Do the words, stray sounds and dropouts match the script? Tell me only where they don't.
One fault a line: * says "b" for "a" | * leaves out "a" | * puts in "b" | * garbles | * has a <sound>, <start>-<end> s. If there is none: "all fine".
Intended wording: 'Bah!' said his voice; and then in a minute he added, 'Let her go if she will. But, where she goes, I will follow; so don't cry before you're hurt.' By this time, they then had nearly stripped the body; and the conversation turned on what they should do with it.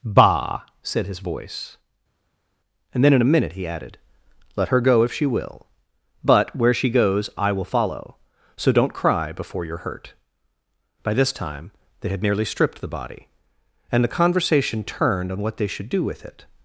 * leaves out "then"